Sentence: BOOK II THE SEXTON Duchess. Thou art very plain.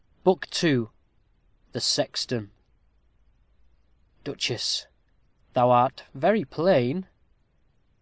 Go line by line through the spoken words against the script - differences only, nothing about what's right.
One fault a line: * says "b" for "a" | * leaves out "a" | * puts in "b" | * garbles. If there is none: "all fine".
all fine